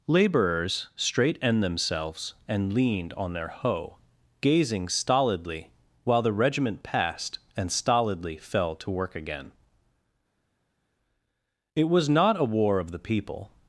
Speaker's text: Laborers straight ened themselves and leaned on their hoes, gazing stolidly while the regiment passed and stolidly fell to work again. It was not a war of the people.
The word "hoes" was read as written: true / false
false